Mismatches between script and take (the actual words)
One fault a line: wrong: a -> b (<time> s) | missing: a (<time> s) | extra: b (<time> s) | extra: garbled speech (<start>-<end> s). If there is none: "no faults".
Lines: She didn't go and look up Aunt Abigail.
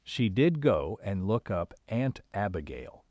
wrong: didn't -> did (0.3 s)